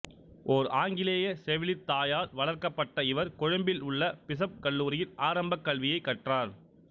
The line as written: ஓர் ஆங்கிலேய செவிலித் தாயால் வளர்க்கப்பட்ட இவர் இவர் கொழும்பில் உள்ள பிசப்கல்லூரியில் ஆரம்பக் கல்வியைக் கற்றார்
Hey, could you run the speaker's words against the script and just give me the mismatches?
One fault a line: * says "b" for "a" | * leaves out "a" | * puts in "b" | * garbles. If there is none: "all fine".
* leaves out "இவர்"